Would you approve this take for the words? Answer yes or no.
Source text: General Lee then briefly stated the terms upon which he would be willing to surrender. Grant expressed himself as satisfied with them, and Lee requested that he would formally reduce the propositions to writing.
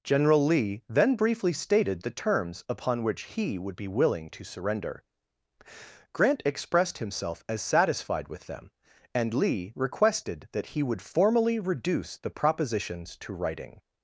yes